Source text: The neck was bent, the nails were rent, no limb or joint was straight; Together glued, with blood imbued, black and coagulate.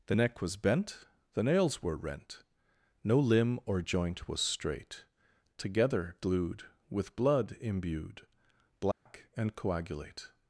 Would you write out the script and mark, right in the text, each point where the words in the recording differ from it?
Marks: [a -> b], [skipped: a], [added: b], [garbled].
The neck was bent, the nails were rent, no limb or joint was straight; Together glued, with blood imbued, black and coagulate.